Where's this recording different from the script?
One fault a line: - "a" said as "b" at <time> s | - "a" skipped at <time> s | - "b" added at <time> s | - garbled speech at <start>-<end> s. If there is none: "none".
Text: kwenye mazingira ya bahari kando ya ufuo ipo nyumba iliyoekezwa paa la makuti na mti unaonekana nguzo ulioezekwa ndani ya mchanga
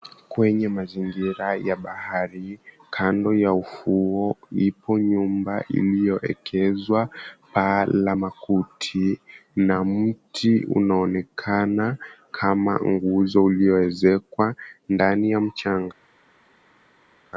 - "kama" added at 12.3 s